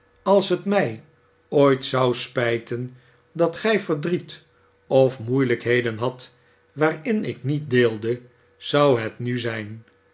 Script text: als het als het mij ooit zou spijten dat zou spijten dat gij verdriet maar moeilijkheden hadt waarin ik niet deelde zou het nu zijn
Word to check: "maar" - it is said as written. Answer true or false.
false